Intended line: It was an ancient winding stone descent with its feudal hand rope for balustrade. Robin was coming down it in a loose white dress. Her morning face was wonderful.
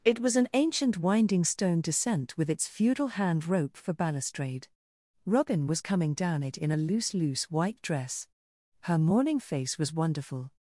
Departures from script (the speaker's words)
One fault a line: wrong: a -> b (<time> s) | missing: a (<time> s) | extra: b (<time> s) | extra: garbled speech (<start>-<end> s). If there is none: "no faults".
extra: loose (7.2 s)